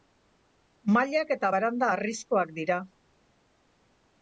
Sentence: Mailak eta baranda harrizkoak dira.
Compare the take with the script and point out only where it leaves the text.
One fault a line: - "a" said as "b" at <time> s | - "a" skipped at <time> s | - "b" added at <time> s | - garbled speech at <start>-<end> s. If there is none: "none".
none